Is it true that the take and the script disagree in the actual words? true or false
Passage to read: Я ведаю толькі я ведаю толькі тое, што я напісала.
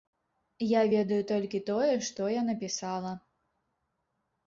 true